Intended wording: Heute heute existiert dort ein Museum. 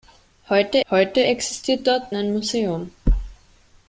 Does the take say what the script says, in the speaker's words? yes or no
yes